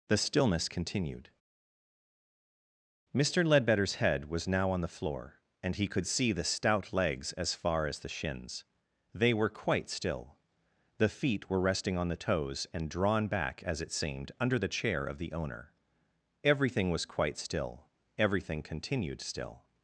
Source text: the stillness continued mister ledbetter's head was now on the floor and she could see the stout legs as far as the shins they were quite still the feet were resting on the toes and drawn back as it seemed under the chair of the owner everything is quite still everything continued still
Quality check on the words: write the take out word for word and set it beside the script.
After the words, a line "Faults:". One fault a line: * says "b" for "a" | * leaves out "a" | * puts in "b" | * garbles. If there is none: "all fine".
the stillness continued mister ledbetter's head was now on the floor and he could see the stout legs as far as the shins they were quite still the feet were resting on the toes and drawn back as it seemed under the chair of the owner everything was quite still everything continued still
Faults:
* says "he" for "she"
* says "was" for "is"